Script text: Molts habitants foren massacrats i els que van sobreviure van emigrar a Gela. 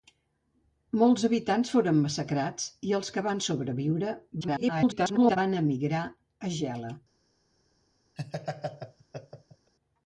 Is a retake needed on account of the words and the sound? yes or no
yes